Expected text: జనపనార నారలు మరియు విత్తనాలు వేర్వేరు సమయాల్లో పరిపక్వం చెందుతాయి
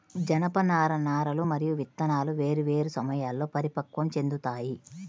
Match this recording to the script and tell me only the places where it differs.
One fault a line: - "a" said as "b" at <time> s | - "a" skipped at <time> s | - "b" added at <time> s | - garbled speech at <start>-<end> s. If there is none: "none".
none